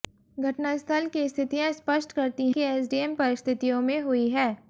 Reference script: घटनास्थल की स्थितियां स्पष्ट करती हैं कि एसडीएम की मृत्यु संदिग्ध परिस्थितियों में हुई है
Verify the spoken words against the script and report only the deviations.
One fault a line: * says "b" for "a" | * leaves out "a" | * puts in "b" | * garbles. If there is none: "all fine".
* leaves out "हैं"
* leaves out "की मृत्यु संदिग्ध"